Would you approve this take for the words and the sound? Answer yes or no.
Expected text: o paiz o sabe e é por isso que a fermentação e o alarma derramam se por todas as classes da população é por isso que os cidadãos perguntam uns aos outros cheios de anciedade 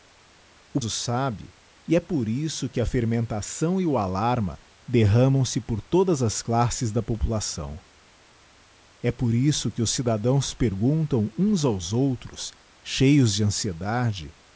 no